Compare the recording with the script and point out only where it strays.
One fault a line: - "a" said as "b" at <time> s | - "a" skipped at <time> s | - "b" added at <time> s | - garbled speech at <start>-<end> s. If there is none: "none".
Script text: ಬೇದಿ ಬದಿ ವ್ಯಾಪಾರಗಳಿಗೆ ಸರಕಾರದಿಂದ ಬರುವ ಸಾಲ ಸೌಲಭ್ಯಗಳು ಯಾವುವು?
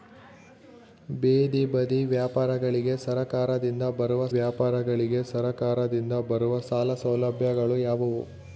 - "ವ್ಯಾಪಾರಗಳಿಗೆ ಸರಕಾರದಿಂದ ಬರುವ" added at 4.3 s